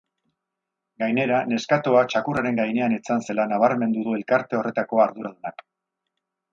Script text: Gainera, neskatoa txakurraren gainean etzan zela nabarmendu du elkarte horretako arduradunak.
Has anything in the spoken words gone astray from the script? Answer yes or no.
no